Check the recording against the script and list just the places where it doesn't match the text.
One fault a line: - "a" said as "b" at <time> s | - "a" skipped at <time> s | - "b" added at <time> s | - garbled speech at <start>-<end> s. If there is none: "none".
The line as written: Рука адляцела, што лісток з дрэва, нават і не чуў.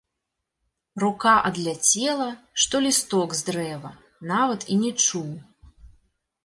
none